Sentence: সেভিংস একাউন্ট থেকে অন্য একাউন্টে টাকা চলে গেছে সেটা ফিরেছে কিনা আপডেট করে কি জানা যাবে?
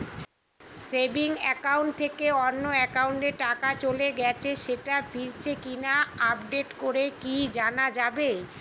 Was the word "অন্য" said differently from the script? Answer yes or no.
no